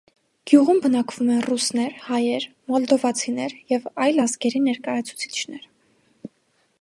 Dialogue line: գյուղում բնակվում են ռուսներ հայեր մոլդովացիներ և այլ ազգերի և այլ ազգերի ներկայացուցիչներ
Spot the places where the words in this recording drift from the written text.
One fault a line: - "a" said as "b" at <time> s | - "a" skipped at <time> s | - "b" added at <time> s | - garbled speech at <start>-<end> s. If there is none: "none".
- "և այլ ազգերի" skipped at 4.6 s